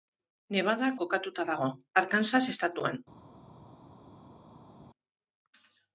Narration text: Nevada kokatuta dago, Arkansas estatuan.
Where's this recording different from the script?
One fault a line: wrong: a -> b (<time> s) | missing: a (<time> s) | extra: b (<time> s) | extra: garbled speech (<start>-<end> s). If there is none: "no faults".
no faults